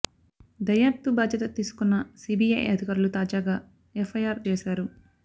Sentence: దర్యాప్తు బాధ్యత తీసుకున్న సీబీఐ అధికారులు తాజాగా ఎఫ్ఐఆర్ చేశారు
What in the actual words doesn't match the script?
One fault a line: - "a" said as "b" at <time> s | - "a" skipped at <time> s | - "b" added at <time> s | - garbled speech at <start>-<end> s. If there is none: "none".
none